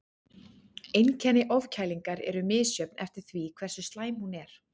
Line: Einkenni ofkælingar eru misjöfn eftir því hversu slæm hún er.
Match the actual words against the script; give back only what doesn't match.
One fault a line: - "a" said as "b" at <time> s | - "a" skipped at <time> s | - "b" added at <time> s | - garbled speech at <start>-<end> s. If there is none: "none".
none